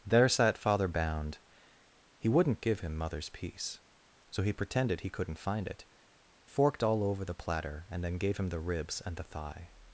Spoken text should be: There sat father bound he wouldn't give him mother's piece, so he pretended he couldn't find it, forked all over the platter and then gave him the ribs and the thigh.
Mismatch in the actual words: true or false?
false